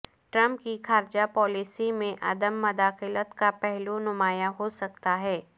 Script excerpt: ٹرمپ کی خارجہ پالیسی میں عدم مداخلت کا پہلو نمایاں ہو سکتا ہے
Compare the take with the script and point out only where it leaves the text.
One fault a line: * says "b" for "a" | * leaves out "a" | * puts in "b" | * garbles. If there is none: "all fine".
all fine